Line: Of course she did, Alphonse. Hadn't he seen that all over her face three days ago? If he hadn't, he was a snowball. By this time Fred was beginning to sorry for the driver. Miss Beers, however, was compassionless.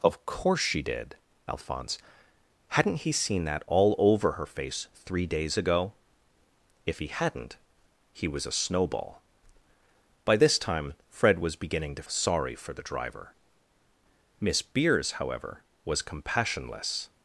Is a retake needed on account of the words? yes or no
no